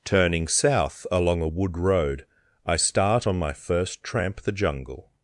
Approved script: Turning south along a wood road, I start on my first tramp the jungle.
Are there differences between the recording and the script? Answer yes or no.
no